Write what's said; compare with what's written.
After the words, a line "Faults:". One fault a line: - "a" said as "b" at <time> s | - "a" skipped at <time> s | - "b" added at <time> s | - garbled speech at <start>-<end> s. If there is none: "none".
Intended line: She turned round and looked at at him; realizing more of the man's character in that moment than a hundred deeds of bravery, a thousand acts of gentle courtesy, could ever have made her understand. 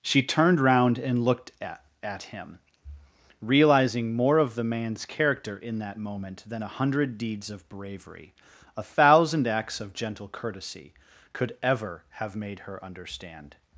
She turned round and looked at at him; realizing more of the man's character in that moment than a hundred deeds of bravery, a thousand acts of gentle courtesy, could ever have made her understand.
Faults:
none